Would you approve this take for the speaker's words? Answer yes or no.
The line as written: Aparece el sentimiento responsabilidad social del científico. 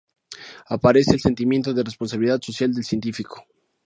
no